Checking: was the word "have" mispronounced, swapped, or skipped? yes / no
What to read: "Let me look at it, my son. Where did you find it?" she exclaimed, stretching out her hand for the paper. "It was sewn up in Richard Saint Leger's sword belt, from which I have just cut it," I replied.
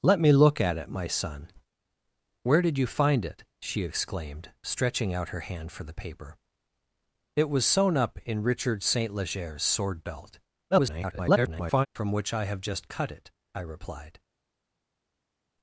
no